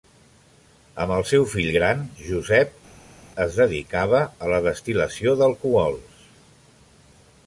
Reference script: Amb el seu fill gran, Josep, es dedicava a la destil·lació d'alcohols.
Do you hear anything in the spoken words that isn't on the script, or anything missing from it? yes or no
no